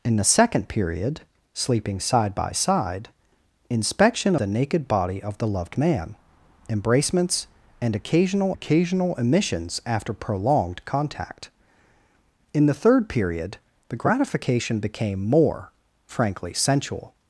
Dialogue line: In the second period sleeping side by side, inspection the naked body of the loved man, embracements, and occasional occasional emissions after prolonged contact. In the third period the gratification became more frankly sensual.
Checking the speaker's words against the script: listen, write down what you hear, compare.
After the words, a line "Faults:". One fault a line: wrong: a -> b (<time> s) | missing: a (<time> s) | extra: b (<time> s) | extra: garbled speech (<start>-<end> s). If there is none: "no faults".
In the second period sleeping side by side, inspection the naked body of the loved man, embracements, and occasional occasional emissions after prolonged contact. In the third period the gratification became more frankly sensual.
Faults:
no faults